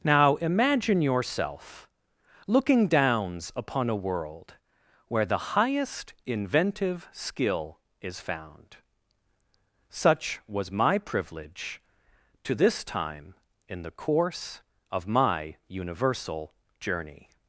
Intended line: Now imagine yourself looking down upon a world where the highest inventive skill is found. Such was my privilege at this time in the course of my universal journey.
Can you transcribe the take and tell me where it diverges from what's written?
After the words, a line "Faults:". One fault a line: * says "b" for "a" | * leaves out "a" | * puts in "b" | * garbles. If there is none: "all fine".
Now imagine yourself looking downs upon a world where the highest inventive skill is found. Such was my privilege to this time in the course of my universal journey.
Faults:
* says "downs" for "down"
* says "to" for "at"